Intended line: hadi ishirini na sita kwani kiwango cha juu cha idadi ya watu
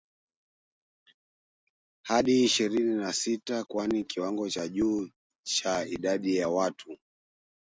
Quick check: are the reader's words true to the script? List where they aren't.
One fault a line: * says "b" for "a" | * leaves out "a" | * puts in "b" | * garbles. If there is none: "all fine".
all fine